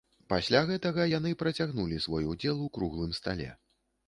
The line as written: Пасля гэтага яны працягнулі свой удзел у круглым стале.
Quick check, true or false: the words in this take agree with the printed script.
true